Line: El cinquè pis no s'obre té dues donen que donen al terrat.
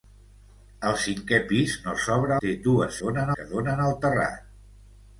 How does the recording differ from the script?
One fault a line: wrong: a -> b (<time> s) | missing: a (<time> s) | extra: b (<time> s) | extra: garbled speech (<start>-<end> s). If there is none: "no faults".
no faults